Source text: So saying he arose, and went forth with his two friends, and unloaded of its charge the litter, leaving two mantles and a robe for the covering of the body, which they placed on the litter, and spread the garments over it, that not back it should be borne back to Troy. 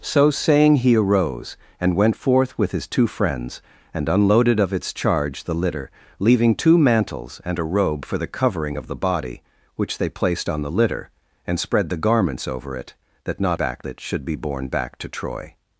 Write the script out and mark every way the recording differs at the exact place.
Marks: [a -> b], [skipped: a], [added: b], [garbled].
So saying he arose, and went forth with his two friends, and unloaded of its charge the litter, leaving two mantles and a robe for the covering of the body, which they placed on the litter, and spread the garments over it, that not back it should be borne back to Troy.